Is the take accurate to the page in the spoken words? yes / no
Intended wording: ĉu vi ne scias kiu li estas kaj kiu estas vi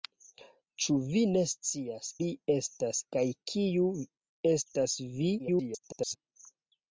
no